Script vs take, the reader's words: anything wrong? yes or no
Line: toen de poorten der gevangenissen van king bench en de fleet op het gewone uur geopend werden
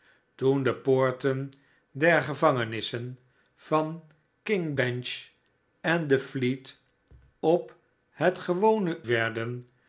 yes